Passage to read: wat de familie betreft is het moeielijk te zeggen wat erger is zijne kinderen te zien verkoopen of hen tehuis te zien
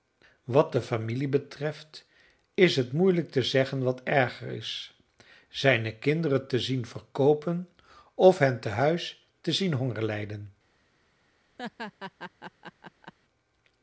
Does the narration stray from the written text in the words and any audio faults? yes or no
yes